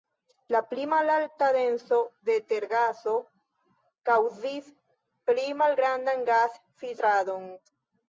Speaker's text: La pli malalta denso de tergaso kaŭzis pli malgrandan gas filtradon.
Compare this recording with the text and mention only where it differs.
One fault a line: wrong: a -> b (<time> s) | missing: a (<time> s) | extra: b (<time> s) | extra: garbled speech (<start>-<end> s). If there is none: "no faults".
no faults